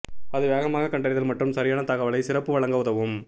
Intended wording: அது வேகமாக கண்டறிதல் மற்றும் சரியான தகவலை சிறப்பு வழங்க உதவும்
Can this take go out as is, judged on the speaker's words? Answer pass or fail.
pass